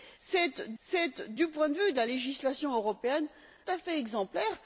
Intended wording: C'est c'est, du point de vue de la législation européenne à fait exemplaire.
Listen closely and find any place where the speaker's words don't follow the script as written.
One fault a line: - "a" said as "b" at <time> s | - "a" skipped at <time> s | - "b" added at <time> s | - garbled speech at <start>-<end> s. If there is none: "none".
none